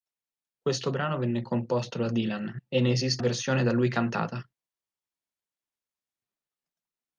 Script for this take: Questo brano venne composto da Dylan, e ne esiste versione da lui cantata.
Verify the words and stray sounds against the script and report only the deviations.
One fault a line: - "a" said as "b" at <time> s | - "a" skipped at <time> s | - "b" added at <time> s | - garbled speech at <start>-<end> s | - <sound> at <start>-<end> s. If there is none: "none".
none